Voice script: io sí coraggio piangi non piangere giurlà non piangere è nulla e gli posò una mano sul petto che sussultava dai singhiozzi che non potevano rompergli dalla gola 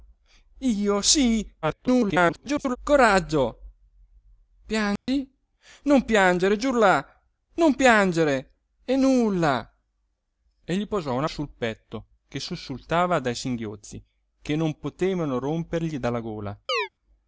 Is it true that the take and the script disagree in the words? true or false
true